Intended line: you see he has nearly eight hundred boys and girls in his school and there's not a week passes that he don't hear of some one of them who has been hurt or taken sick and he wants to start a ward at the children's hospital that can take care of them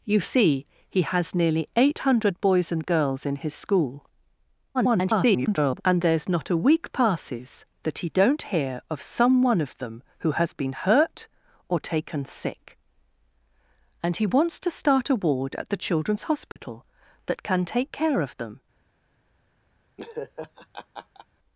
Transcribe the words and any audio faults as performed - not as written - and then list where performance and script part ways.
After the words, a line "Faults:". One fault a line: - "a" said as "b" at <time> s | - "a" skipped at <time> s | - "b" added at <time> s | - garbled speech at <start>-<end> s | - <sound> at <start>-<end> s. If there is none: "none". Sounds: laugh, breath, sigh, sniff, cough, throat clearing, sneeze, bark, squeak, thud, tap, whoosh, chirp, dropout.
you see he has nearly eight hundred boys and girls in his school [garbled] and there's not a week passes that he don't hear of some one of them who has been hurt or taken sick and he wants to start a ward at the children's hospital that can take care of them
Faults:
- garbled speech at 4.7-5.8 s
- dropout at 16.5-16.6 s
- laugh at 20.0-21.3 s